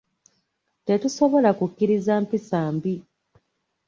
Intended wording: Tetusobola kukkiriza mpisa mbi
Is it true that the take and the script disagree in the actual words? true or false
false